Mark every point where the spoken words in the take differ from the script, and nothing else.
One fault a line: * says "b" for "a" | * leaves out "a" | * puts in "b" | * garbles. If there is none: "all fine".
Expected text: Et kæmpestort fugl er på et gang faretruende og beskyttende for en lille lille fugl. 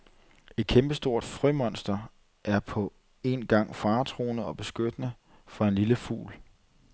* says "frømonster" for "fugl"
* says "en" for "et"
* leaves out "lille"